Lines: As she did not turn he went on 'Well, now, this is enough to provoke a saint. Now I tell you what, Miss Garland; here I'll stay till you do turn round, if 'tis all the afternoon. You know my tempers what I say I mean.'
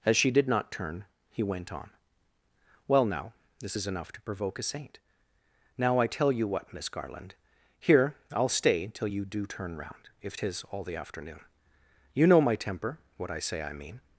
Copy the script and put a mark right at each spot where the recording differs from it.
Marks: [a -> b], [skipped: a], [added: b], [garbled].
As she did not turn he went on 'Well, now, this is enough to provoke a saint. Now I tell you what, Miss Garland; here I'll stay till you do turn round, if 'tis all the afternoon. You know my [tempers -> temper] what I say I mean.'